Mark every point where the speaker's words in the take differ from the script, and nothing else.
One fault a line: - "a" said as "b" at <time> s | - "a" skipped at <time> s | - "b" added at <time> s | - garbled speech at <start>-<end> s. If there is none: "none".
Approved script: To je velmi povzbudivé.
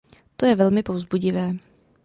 none